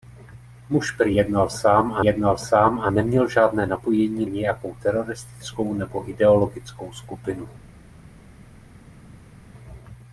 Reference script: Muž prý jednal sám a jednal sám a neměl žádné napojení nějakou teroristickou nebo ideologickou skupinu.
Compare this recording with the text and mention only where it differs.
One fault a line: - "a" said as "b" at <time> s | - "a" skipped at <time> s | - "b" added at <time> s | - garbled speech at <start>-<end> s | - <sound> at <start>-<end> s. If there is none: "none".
none